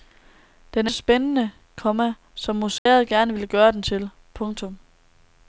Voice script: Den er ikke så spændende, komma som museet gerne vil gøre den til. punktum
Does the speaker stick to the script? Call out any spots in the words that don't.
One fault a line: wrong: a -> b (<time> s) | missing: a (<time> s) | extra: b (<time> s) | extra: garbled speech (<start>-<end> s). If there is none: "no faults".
missing: ikke (0.9 s)